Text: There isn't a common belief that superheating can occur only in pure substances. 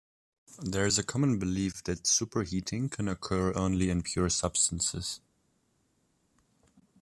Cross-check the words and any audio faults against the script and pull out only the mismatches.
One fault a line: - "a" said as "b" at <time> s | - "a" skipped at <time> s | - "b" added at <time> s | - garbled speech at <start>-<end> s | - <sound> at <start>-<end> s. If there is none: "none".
- "isn't" said as "is" at 0.9 s